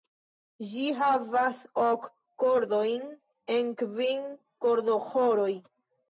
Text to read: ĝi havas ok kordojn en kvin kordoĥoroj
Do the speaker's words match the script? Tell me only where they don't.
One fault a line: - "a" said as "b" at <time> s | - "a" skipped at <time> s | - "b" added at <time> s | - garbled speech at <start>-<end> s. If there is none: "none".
none